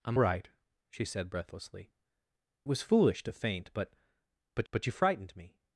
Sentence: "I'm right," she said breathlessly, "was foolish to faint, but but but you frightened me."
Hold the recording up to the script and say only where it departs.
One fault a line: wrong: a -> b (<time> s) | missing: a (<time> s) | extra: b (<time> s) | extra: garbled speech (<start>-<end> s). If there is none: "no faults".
no faults